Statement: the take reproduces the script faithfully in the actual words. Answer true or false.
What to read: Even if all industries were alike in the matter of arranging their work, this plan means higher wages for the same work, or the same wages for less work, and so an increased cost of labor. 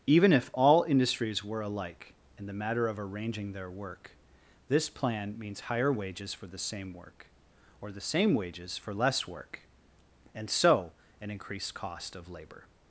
true